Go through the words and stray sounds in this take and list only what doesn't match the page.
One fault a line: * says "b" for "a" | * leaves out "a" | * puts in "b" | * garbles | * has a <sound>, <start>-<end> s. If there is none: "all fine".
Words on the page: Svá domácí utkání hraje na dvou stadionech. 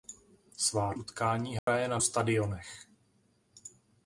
* leaves out "domácí"
* has a dropout, 1.6-1.7 s
* leaves out "dvou"